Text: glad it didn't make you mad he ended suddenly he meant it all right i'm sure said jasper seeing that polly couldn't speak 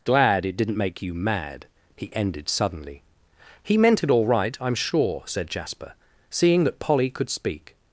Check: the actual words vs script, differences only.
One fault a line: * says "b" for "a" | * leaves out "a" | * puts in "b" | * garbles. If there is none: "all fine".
* says "could" for "couldn't"